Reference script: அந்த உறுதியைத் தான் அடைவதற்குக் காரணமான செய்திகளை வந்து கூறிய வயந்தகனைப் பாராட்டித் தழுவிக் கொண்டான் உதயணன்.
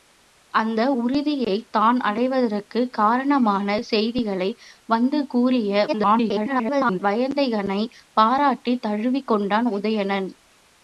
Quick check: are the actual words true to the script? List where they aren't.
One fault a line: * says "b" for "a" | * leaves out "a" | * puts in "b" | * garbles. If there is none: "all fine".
* garbles